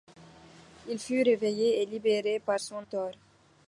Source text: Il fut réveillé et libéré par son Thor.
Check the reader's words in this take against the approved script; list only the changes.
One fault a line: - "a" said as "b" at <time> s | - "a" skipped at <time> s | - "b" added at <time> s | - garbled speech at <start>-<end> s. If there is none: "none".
none